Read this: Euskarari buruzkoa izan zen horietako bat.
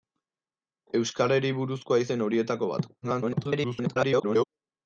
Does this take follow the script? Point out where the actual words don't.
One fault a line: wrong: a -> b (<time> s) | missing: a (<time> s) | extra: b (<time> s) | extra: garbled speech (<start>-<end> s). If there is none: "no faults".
missing: izan (2.0 s)
extra: garbled speech (3.0-4.5 s)